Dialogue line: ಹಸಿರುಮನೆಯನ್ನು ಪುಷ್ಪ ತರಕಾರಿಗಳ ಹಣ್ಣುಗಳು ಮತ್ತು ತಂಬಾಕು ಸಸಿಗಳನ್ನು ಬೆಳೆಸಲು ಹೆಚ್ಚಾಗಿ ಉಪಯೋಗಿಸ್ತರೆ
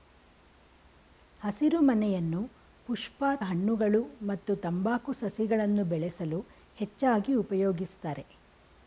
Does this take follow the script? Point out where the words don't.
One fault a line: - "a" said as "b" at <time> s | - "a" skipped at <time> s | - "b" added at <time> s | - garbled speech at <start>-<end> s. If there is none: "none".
- "ತರಕಾರಿಗಳ" skipped at 3.2 s